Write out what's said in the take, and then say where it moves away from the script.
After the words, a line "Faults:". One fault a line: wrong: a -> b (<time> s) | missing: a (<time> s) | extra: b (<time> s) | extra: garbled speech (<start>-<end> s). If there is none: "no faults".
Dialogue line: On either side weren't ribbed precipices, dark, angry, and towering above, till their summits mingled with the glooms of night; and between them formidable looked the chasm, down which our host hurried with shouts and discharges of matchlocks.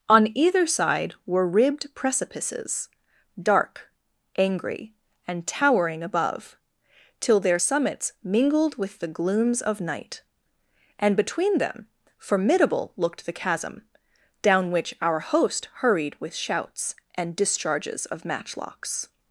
On either side were ribbed precipices, dark, angry, and towering above, till their summits mingled with the glooms of night; and between them formidable looked the chasm, down which our host hurried with shouts and discharges of matchlocks.
Faults:
wrong: weren't -> were (1.2 s)